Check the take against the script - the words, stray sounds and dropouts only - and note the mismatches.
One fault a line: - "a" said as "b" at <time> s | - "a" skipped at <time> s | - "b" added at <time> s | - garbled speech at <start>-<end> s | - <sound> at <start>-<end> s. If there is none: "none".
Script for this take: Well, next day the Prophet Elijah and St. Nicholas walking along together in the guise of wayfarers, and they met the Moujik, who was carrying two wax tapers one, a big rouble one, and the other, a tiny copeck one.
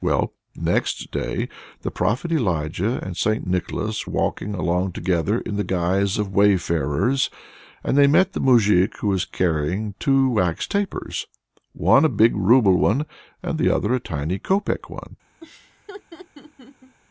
- laugh at 15.4-17.0 s